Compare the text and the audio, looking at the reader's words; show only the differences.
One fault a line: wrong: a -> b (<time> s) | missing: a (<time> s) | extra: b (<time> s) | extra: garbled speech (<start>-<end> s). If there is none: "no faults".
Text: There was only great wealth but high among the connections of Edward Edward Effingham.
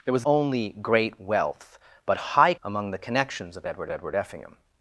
no faults